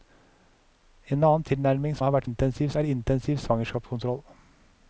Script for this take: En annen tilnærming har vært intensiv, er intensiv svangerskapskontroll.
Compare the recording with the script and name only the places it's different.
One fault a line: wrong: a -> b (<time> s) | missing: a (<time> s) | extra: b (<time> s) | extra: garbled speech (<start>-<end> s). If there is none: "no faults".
no faults